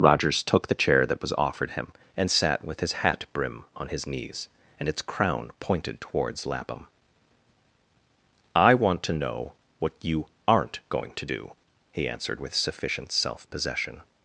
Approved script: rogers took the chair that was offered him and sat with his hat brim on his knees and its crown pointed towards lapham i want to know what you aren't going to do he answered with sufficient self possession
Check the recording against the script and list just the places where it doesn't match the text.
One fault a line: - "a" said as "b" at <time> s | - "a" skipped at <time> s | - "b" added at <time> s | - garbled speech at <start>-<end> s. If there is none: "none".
none